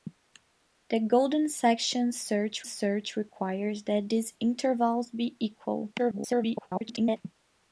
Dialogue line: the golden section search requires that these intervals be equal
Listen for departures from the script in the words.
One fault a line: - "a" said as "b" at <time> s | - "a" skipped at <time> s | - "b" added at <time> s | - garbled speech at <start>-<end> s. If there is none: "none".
- "search" added at 2.6 s
- garbled speech at 6.0-7.2 s